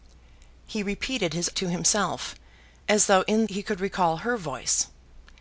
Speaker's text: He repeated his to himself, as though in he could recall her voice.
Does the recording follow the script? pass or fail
pass